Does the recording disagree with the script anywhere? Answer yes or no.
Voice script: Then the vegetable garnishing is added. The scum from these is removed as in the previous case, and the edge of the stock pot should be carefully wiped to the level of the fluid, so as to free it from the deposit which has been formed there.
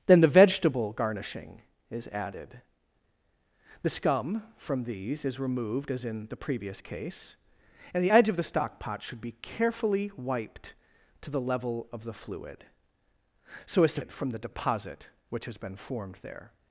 yes